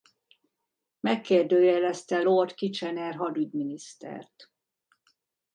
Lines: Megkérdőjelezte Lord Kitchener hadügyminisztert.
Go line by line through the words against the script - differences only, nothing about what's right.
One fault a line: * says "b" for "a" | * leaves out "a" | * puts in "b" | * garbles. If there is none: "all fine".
all fine